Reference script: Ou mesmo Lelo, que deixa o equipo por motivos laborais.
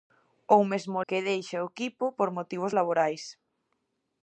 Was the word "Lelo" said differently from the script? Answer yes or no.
yes